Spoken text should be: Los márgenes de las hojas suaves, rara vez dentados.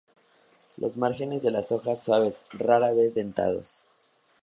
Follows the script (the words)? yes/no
yes